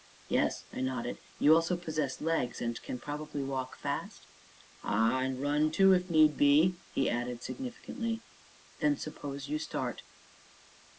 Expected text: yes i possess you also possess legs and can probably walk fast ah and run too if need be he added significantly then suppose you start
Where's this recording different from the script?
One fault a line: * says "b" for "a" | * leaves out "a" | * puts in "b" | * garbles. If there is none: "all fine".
* says "nodded" for "possess"